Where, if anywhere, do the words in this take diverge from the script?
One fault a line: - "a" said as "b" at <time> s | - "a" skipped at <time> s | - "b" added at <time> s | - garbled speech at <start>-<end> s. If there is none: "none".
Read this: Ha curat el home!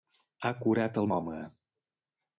none